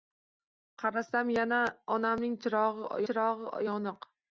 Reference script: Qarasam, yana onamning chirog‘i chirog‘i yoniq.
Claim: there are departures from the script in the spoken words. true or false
false